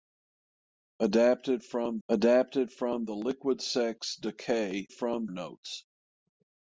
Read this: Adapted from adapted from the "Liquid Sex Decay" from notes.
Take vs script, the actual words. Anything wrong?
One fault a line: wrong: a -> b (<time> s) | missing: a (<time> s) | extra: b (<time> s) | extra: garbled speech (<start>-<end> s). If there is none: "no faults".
no faults